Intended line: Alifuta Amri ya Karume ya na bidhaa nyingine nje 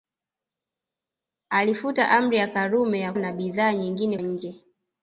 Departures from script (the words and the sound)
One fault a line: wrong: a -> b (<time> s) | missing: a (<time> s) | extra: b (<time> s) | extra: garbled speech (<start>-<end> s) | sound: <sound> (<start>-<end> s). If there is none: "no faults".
no faults